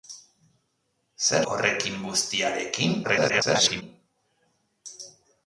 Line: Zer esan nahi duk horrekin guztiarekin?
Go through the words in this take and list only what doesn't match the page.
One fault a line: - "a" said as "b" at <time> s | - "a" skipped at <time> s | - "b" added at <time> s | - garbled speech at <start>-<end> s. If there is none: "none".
- "esan nahi duk" skipped at 1.4 s
- garbled speech at 3.0-3.8 s